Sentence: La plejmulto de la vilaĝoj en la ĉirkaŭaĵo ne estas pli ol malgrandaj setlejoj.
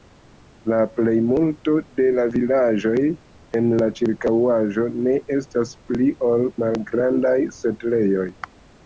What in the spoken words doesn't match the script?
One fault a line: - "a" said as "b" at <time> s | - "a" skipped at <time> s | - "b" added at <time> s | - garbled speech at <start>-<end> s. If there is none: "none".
none